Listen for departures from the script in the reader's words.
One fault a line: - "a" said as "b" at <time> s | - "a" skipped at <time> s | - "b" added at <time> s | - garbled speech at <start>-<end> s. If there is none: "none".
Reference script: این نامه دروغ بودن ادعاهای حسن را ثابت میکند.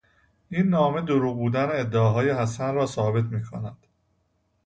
none